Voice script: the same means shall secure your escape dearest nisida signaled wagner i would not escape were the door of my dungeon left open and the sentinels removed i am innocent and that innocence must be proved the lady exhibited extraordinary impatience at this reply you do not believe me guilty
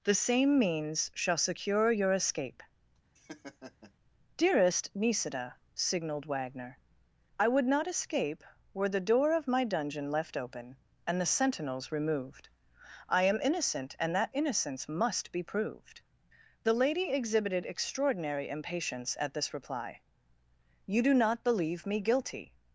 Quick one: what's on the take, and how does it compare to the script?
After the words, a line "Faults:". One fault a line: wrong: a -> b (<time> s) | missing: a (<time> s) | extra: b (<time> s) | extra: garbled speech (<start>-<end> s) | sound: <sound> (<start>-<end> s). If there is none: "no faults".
the same means shall secure your escape dearest nisida signaled wagner i would not escape were the door of my dungeon left open and the sentinels removed i am innocent and that innocence must be proved the lady exhibited extraordinary impatience at this reply you do not believe me guilty
Faults:
sound: laugh (3.2-3.9 s)